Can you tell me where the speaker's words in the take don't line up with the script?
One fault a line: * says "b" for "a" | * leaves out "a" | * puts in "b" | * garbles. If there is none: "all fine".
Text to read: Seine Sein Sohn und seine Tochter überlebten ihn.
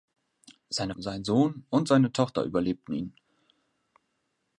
all fine